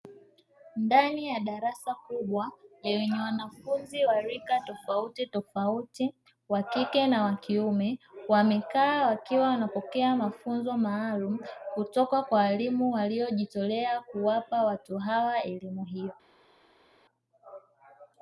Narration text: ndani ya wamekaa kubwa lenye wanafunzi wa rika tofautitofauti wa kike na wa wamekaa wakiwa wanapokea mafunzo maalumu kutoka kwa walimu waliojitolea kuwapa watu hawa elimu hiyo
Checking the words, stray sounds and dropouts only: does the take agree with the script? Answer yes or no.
no